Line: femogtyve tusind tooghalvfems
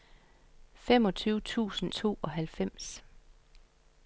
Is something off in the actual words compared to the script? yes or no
no